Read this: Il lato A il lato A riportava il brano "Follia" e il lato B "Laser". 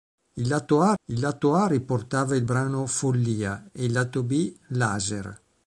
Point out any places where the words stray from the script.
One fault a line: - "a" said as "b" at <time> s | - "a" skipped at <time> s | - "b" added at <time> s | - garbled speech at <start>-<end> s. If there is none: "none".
none